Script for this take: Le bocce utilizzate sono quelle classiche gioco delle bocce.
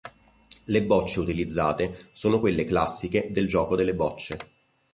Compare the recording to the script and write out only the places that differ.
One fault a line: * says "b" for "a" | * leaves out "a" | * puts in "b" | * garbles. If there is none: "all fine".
* puts in "del"